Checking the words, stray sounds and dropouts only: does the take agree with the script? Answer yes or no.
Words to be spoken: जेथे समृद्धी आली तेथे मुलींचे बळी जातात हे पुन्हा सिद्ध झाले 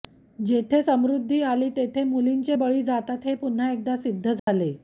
no